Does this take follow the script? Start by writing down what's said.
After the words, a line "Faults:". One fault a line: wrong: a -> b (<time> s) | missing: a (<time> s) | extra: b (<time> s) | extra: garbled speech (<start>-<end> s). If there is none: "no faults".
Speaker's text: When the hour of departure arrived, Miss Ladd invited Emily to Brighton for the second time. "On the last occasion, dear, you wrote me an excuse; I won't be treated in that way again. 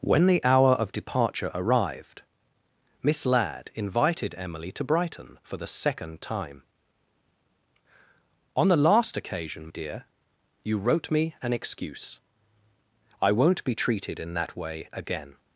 When the hour of departure arrived, Miss Ladd invited Emily to Brighton for the second time. "On the last occasion, dear, you wrote me an excuse; I won't be treated in that way again.
Faults:
no faults